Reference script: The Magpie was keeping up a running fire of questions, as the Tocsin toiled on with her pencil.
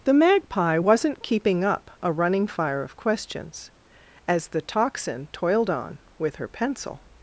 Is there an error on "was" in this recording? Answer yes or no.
yes